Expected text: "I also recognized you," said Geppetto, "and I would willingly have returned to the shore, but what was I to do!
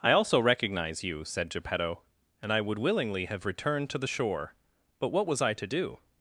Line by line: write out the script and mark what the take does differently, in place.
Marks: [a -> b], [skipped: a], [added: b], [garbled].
"I also [recognized -> recognize] you," said Geppetto, "and I would willingly have returned to the shore, but what was I to do!